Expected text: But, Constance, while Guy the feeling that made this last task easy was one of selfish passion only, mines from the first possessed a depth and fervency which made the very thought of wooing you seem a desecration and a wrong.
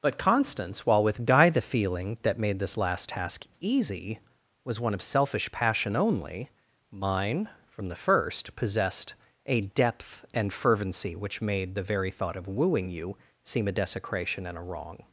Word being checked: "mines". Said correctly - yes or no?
no